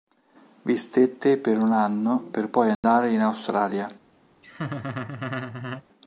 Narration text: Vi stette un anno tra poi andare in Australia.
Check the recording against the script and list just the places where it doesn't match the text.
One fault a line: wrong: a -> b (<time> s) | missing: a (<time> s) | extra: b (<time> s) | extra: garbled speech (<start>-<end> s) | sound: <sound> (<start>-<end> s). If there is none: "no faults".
extra: per (1.4 s)
wrong: tra -> per (2.3 s)
sound: dropout (2.7-2.8 s)
sound: laugh (4.4-5.8 s)